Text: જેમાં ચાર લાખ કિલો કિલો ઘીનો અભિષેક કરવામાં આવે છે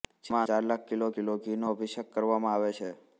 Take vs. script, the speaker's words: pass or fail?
pass